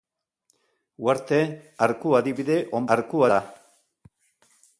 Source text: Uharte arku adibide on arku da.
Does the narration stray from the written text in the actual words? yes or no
no